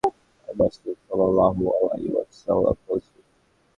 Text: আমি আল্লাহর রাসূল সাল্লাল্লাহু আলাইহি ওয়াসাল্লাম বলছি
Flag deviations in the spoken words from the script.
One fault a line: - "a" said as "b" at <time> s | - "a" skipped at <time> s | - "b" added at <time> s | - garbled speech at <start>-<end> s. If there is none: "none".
- "আল্লাহর" skipped at 0.6 s